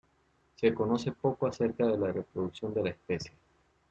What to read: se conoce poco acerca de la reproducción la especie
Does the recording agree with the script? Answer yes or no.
no